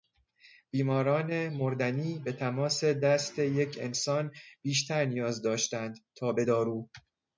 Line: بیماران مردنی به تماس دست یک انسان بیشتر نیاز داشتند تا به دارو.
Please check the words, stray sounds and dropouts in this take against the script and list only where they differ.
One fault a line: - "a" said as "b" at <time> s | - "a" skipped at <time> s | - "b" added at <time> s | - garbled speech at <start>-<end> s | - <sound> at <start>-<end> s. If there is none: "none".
none